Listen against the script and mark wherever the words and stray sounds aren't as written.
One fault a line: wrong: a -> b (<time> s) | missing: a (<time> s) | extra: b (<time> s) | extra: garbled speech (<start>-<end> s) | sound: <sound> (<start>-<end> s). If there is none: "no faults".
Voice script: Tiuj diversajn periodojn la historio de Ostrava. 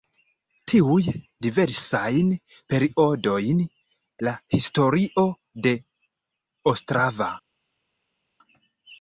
no faults